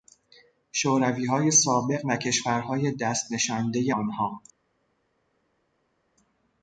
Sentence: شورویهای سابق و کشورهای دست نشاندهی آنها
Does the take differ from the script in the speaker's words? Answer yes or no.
no